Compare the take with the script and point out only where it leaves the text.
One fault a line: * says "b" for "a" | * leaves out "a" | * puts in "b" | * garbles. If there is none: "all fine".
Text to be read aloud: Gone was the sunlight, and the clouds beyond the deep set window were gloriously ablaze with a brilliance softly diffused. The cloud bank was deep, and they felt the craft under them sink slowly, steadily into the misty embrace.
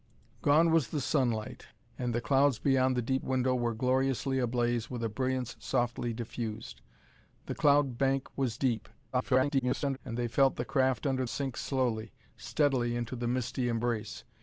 * leaves out "set"
* garbles
* leaves out "them"